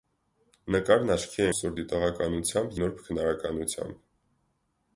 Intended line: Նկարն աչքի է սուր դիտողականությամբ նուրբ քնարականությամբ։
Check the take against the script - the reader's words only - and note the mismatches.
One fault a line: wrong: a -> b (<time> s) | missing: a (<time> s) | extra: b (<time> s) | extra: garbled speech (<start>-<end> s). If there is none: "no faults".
no faults